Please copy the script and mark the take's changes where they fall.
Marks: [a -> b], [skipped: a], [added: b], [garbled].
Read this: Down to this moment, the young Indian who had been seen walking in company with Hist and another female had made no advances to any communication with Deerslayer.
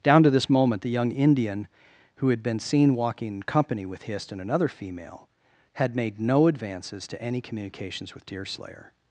Down to this moment, the young Indian who had been seen walking in company with Hist and another female had made no advances to any [communication -> communications] with Deerslayer.